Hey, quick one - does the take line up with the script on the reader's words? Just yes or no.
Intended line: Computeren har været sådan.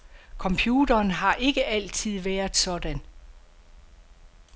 no